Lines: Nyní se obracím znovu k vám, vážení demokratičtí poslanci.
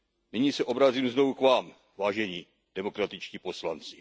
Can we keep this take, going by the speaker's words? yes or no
yes